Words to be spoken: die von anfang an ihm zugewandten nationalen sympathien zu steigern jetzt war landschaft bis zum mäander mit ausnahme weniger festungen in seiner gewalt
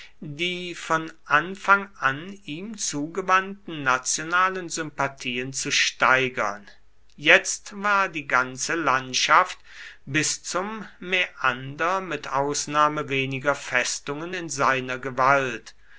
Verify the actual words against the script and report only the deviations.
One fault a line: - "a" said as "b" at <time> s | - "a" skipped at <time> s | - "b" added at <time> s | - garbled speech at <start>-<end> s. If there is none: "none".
- "die ganze" added at 8.1 s